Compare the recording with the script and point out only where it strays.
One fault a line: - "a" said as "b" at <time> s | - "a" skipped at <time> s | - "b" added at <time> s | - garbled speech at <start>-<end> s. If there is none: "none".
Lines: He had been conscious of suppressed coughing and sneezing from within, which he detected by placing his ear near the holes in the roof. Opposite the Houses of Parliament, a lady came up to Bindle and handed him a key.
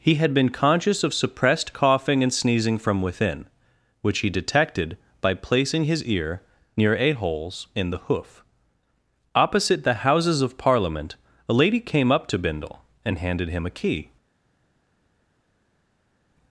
- "the" said as "a" at 7.0 s
- "roof" said as "hoof" at 8.0 s